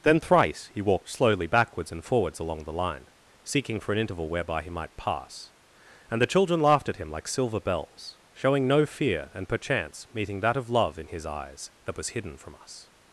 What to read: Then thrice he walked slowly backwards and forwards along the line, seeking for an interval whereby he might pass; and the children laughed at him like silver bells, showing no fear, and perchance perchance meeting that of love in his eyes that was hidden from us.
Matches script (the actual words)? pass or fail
fail